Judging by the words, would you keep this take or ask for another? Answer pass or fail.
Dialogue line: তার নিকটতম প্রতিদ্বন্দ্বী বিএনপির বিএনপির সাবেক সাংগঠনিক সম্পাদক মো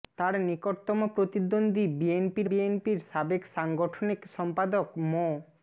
pass